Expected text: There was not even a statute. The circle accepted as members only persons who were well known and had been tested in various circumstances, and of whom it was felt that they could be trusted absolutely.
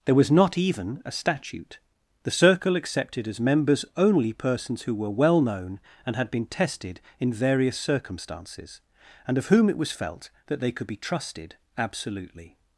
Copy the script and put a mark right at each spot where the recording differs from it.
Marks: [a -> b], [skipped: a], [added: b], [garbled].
There was not even a statute. The circle accepted as members only persons who were well known and had been tested in various circumstances, and of whom it was felt that they could be trusted absolutely.